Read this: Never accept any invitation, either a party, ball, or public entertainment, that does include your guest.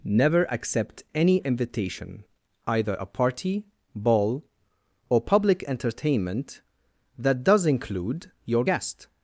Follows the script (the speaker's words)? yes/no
yes